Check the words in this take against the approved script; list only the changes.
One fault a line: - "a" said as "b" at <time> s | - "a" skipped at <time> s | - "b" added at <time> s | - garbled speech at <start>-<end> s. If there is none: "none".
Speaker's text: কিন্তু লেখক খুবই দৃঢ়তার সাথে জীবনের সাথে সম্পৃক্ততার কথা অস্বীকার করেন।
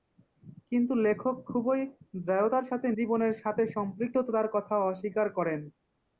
none